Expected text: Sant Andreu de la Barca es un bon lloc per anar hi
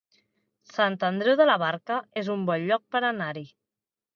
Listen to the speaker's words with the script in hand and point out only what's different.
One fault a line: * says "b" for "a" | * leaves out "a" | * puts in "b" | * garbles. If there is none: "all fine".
all fine